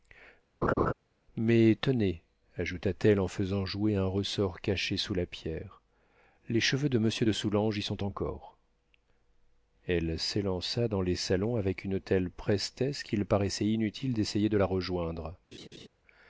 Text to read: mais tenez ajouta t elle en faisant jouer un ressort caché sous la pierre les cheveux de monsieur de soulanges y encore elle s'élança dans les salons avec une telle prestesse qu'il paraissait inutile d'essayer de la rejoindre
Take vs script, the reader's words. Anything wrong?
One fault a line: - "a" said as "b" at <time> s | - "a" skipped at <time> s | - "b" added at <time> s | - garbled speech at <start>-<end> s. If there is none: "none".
- "sont" added at 7.8 s